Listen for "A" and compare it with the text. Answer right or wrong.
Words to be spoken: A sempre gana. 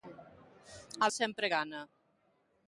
right